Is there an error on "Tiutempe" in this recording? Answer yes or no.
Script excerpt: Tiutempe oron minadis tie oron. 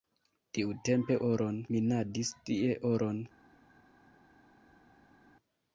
no